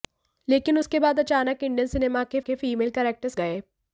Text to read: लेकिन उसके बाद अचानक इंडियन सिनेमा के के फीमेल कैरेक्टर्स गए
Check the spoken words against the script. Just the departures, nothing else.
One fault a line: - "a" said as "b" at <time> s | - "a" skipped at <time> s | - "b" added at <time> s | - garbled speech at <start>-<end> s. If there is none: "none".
none